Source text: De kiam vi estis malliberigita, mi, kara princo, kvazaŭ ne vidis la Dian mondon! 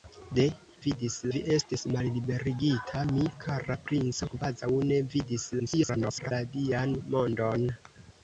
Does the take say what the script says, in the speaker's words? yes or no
no